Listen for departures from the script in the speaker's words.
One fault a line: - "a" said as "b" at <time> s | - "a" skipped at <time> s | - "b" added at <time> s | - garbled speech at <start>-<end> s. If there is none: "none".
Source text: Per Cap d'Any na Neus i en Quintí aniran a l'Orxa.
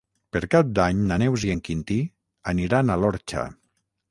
none